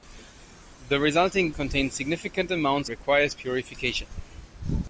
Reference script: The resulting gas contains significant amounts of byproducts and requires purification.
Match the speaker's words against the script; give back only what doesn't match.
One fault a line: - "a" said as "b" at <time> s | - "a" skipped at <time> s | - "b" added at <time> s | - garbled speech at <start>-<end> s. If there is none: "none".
- "gas" skipped at 1.5 s
- "of byproducts and" skipped at 2.9 s